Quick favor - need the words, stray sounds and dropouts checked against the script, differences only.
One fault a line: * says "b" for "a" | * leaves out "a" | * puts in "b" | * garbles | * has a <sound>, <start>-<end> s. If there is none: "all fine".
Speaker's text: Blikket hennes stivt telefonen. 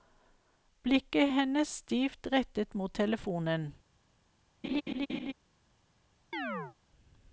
* puts in "rettet mot"
* has a laugh, 4.6-5.3 s
* has a chirp, 6.3-6.8 s